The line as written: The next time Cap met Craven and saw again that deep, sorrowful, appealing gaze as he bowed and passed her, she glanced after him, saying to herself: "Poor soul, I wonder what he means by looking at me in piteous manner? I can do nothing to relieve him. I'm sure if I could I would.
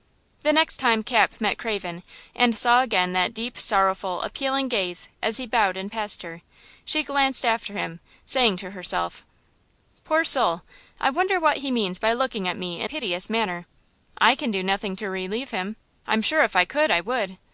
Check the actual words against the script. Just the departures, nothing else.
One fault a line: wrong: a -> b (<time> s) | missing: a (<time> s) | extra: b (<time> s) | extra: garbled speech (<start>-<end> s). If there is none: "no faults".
no faults